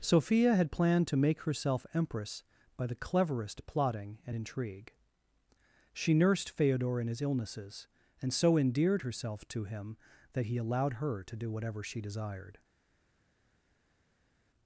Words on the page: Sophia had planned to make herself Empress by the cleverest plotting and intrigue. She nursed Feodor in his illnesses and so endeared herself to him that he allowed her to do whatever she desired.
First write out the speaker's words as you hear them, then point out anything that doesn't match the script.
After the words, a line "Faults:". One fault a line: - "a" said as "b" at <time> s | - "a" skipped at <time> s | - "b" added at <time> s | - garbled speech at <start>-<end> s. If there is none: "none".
Sophia had planned to make herself Empress by the cleverest plotting and intrigue. She nursed Feodor in his illnesses and so endeared herself to him that he allowed her to do whatever she desired.
Faults:
none